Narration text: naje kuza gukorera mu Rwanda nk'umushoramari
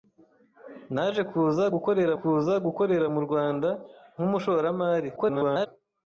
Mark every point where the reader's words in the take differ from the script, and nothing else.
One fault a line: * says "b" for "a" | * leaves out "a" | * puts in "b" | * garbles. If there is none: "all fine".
* puts in "kuza gukorera"
* garbles